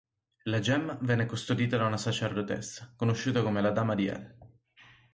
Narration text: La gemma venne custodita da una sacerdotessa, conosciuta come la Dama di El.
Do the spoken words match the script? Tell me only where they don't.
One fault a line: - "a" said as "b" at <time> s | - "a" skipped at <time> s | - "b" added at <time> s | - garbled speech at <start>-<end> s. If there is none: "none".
none